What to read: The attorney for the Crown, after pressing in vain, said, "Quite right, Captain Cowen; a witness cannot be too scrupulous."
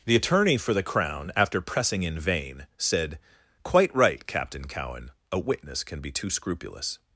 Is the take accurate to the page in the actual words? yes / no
no